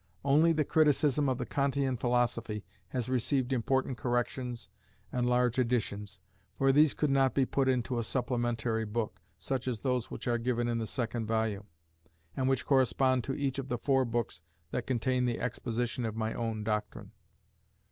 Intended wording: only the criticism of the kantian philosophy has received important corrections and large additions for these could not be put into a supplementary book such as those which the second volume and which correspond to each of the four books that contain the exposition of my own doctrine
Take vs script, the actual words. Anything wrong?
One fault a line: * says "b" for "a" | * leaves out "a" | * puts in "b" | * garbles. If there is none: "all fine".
* puts in "are given in"